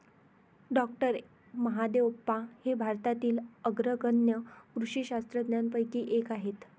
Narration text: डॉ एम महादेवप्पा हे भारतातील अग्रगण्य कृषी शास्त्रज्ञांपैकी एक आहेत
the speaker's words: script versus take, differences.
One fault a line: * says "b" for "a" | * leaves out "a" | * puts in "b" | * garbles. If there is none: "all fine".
* leaves out "एम"